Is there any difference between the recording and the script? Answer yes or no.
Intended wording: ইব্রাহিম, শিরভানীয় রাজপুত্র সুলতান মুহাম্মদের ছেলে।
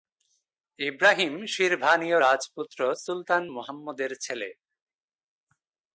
no